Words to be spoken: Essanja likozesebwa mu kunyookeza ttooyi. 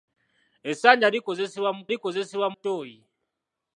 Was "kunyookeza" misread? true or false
true